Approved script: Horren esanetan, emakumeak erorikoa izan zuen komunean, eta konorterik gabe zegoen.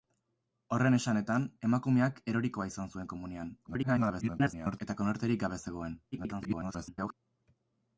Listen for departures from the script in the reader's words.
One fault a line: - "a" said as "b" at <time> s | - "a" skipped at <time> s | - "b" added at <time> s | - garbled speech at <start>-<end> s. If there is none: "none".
- garbled speech at 3.6-4.8 s
- garbled speech at 6.1-7.1 s